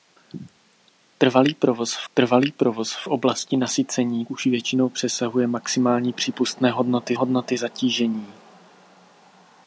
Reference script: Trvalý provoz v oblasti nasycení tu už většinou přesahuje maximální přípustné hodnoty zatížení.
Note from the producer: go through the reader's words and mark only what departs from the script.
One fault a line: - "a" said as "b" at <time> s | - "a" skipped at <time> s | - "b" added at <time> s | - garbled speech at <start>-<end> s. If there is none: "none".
- "trvalý provoz v" added at 2.1 s
- "tu" skipped at 4.3 s
- "hodnoty" added at 7.1 s